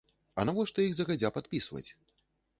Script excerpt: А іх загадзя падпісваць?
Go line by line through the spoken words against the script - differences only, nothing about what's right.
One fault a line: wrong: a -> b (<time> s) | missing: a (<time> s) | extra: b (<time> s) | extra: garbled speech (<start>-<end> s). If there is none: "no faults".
extra: навошта (0.5 s)